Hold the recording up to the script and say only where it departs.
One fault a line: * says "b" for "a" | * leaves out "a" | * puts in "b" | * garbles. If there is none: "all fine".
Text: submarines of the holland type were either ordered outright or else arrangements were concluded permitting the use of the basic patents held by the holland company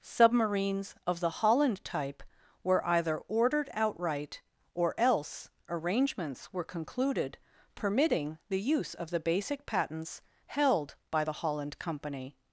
all fine